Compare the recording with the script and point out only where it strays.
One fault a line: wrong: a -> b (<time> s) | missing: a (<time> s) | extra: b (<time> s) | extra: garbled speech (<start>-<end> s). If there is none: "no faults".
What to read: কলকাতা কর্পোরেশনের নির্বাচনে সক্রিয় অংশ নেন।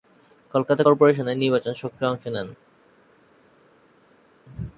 no faults